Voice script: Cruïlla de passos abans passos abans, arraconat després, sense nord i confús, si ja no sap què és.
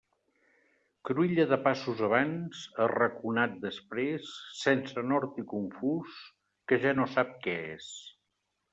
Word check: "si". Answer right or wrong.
wrong